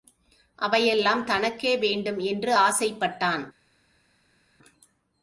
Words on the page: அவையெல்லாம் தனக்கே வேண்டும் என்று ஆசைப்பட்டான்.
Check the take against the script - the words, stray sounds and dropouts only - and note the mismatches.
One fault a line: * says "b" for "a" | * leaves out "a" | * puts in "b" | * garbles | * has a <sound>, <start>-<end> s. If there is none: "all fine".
all fine